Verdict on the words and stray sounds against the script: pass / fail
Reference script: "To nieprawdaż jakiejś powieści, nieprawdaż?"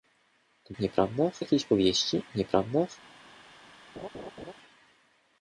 fail